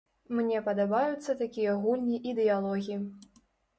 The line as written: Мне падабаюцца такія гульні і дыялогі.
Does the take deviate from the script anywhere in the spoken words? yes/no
no